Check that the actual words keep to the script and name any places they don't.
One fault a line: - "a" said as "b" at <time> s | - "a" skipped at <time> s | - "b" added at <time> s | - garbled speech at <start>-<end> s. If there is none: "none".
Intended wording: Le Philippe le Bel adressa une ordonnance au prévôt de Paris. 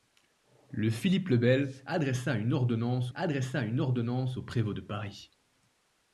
- "adressa une ordonnance" added at 3.1 s